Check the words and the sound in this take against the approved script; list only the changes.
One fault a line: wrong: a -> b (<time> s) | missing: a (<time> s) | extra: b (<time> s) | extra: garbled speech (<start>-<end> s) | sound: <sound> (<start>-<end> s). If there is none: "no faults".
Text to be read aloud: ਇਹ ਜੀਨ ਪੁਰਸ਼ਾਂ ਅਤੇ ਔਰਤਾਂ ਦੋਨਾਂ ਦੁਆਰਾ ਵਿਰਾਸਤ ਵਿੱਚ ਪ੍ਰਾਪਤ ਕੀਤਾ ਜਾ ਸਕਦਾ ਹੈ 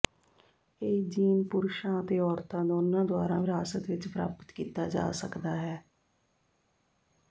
no faults